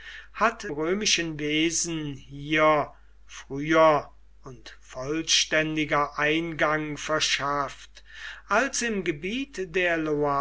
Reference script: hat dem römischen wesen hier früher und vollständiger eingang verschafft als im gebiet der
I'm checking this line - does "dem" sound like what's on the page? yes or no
no